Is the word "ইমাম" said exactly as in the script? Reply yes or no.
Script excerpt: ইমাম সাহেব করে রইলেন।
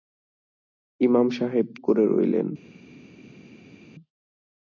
yes